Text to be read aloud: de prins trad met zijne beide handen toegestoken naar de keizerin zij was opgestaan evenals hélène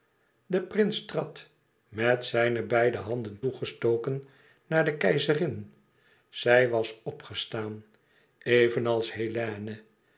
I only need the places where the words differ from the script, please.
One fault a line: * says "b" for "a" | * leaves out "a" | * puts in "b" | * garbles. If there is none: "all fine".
all fine